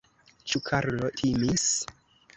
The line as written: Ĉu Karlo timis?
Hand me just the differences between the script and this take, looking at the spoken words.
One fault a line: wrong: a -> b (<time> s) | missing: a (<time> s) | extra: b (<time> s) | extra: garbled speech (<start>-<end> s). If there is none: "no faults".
no faults